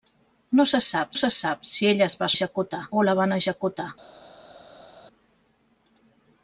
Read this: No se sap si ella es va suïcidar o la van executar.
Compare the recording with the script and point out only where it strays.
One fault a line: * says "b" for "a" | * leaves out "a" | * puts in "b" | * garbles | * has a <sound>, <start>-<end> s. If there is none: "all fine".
* puts in "se sap"
* says "executar" for "suïcidar"